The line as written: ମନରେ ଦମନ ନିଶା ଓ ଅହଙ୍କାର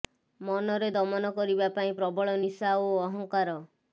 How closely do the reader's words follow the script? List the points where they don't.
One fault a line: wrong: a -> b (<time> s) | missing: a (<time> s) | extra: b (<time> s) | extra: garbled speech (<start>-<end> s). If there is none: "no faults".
extra: କରିବା ପାଇଁ ପ୍ରବଳ (1.3 s)